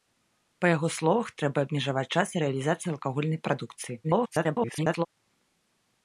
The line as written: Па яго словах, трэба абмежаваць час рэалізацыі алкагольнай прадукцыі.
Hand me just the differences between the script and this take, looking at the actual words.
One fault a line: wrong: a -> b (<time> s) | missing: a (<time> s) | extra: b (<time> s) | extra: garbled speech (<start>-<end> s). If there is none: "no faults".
extra: garbled speech (4.0-5.1 s)